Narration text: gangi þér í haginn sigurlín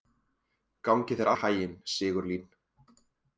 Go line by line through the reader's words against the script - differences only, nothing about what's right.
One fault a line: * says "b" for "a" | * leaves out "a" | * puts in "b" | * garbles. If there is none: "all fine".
all fine